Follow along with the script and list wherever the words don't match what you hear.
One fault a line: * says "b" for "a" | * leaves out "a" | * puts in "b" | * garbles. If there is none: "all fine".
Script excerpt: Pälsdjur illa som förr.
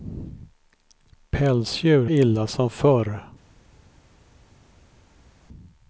all fine